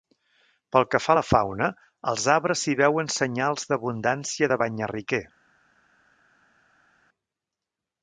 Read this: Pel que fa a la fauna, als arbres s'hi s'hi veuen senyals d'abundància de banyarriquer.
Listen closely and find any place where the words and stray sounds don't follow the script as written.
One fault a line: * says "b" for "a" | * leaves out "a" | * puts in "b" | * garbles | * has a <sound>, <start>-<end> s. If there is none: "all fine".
* leaves out "s'hi"